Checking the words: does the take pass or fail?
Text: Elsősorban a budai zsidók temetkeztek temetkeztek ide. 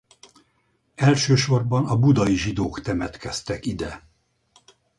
fail